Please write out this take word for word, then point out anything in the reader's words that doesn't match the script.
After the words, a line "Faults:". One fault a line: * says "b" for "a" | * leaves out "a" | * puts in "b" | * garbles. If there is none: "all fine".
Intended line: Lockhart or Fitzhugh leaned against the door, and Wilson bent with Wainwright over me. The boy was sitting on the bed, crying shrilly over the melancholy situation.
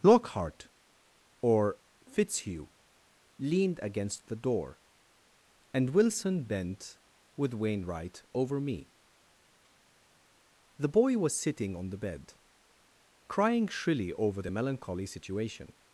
Lockhart or Fitzhugh leaned against the door, and Wilson bent with Wainwright over me. The boy was sitting on the bed, crying shrilly over the melancholy situation.
Faults:
all fine